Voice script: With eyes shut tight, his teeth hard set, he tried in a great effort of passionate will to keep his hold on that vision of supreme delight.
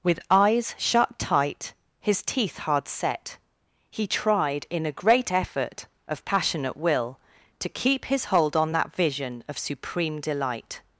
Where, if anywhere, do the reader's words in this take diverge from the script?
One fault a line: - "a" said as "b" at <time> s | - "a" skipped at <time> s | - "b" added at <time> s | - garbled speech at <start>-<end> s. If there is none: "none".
none